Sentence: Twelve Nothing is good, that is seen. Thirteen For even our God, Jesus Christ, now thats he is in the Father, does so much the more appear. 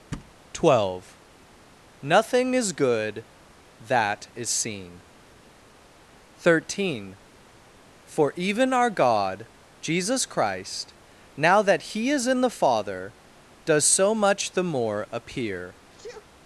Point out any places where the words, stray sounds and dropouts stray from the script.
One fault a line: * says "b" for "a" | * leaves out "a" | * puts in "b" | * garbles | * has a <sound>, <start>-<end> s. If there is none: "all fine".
* has a thud, 0.1-0.3 s
* says "that" for "thats"
* has a sneeze, 15.9-16.3 s